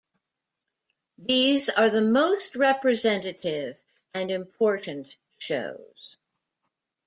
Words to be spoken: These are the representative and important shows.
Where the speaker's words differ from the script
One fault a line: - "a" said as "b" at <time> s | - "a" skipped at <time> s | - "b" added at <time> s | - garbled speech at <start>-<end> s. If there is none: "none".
- "most" added at 2.0 s